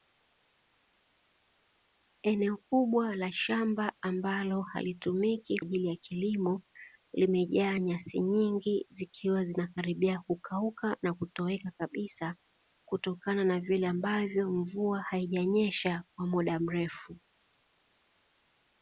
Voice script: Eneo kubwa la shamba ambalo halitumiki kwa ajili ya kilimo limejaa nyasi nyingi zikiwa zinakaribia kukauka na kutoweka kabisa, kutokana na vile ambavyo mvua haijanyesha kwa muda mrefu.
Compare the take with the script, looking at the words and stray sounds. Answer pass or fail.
fail